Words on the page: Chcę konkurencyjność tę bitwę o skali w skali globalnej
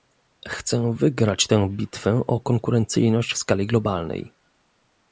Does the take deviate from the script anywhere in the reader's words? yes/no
yes